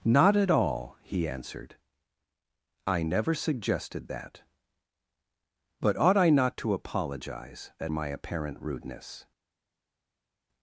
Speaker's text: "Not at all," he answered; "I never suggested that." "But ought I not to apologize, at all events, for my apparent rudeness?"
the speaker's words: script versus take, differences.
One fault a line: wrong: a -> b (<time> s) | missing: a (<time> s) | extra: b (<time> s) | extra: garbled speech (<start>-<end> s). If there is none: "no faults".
missing: all events for (7.9 s)